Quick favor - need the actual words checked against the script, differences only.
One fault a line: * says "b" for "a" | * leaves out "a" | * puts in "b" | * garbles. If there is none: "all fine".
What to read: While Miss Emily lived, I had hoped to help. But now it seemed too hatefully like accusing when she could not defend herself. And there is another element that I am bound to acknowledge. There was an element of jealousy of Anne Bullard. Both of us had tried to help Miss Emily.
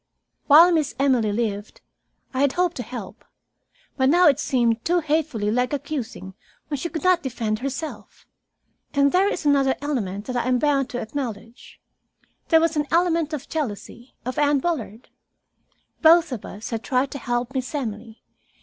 all fine